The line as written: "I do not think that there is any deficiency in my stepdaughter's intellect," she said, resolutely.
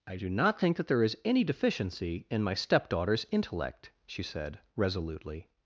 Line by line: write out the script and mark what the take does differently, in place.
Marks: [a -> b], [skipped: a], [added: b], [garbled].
"I do not think that there is any deficiency in my stepdaughter's intellect," she said, resolutely.